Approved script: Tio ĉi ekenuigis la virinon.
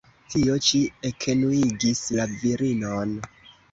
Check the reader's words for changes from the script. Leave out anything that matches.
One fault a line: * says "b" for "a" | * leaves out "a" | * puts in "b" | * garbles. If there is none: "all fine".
all fine